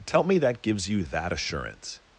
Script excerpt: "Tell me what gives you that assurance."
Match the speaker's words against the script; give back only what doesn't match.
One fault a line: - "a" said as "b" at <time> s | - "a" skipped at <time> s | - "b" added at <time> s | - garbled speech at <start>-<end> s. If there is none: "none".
- "what" said as "that" at 0.4 s